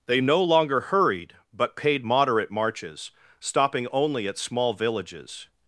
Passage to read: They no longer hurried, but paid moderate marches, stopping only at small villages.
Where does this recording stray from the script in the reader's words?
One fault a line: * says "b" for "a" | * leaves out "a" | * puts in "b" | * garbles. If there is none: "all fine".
all fine